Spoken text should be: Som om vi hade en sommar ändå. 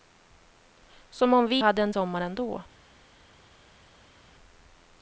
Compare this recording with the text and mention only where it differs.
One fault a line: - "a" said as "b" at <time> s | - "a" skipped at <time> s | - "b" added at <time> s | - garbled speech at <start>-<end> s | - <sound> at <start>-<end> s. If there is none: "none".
none